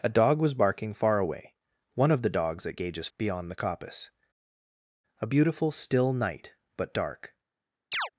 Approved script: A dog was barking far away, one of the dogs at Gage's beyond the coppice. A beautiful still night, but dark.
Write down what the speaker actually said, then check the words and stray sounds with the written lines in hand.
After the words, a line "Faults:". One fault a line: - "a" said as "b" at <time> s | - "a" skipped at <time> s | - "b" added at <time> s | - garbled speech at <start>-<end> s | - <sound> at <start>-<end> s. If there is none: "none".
A dog was barking far away, one of the dogs at Gage's beyond the coppice. A beautiful still night, but dark.
Faults:
- chirp at 7.9-8.1 s